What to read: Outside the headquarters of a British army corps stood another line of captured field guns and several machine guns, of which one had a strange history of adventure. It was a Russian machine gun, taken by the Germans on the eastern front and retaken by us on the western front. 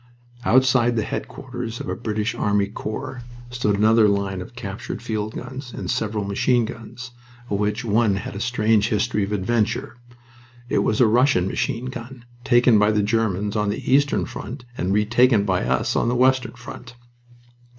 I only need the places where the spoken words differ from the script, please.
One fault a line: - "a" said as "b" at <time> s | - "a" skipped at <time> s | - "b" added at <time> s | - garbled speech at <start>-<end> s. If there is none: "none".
none